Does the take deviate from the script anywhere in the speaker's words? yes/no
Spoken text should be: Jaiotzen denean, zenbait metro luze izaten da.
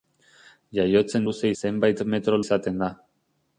yes